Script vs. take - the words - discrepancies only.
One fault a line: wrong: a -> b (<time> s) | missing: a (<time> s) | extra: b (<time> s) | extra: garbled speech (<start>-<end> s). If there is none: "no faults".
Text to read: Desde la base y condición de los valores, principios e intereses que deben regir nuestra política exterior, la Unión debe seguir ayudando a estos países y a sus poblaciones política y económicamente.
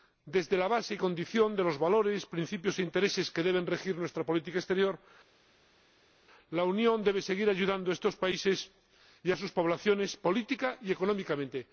no faults